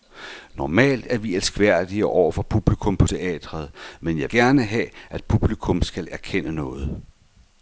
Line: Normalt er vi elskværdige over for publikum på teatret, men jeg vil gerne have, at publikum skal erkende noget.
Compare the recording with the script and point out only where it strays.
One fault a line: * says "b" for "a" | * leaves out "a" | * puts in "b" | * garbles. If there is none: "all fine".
* leaves out "vil"